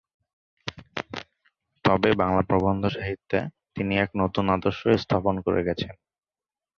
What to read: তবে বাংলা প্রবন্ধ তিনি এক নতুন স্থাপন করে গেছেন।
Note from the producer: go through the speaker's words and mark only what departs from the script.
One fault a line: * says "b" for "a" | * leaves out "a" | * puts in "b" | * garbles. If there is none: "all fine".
* puts in "সাহিত্যে"
* puts in "আদর্শ"